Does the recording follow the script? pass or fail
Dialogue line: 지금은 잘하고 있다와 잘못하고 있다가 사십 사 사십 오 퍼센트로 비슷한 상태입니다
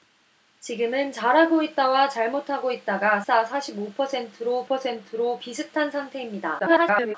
fail